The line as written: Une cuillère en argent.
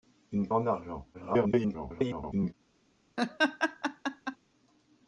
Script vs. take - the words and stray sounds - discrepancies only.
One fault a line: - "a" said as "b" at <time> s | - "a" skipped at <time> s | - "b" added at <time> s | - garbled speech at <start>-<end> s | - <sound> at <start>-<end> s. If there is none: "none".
- "cuillère" skipped at 0.5 s
- garbled speech at 1.1-2.5 s
- laugh at 3.2-4.4 s